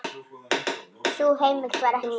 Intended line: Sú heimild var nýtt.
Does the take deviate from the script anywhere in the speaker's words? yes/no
no